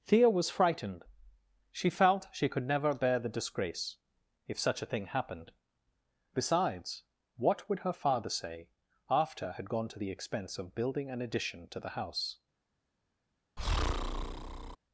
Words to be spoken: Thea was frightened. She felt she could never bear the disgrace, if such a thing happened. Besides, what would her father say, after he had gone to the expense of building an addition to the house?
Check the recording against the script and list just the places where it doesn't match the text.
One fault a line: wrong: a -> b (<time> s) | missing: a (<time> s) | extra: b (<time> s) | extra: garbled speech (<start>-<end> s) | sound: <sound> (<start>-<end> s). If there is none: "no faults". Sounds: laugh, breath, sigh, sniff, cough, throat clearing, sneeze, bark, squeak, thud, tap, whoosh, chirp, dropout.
missing: he (9.5 s)
sound: breath (13.6-14.8 s)